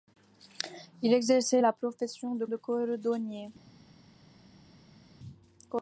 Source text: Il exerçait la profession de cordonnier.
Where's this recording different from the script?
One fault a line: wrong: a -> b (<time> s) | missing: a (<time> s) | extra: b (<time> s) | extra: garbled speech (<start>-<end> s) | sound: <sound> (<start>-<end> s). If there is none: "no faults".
extra: de (2.4 s)